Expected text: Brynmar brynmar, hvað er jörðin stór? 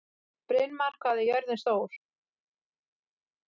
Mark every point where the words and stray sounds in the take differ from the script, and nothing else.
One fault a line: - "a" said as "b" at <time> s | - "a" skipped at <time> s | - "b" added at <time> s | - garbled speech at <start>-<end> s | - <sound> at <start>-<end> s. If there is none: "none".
- "brynmar" skipped at 1.0 s